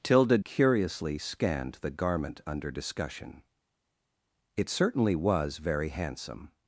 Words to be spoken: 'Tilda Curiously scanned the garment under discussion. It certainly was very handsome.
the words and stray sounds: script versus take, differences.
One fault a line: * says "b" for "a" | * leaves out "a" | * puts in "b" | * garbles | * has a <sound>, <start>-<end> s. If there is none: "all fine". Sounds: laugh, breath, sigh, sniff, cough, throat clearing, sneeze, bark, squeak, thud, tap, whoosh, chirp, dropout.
all fine